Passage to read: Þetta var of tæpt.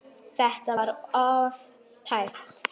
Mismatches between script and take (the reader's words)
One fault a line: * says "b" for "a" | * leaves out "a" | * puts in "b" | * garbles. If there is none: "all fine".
all fine